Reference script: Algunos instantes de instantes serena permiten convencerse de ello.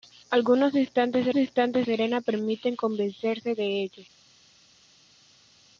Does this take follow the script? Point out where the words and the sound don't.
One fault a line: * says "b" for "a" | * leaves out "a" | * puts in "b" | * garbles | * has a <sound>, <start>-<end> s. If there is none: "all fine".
all fine